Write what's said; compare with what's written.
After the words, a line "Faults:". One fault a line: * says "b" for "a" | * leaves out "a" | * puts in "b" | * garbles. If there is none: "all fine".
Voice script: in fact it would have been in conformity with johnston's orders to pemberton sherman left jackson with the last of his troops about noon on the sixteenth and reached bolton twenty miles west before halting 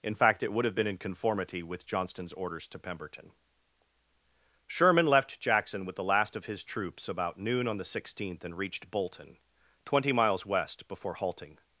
in fact it would have been in conformity with johnston's orders to pemberton sherman left jackson with the last of his troops about noon on the sixteenth and reached bolton twenty miles west before halting
Faults:
all fine